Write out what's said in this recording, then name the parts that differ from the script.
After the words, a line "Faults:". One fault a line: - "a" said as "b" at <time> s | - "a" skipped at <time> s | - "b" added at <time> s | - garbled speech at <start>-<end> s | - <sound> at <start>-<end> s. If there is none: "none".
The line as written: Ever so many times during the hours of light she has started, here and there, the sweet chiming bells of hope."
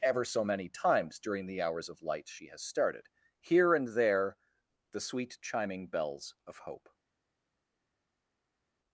Ever so many times during the hours of light she has started, here and there, the sweet chiming bells of hope."
Faults:
none